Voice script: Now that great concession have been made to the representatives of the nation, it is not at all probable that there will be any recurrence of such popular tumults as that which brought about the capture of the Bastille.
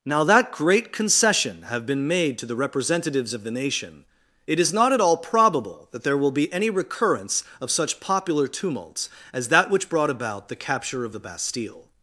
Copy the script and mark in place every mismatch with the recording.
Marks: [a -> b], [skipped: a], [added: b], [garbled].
Now that great concession have been made to the representatives of the nation, it is not at all probable that there will be any recurrence of such popular tumults as that which brought about the capture of the Bastille.